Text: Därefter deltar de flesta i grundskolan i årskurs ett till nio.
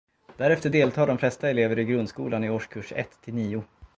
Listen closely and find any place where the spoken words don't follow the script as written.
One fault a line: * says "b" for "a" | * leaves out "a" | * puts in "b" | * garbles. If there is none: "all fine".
* puts in "elever"